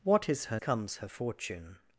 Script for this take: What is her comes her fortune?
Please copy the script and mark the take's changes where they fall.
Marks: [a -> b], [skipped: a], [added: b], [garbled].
What is her comes her fortune?